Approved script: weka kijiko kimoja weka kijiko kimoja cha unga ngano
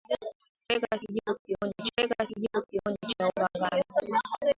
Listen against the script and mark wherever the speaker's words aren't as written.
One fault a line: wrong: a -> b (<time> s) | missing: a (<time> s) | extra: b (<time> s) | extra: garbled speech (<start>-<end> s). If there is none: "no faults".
no faults